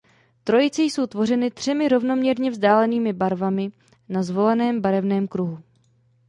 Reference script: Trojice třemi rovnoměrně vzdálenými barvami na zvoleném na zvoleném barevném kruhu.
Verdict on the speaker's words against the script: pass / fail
fail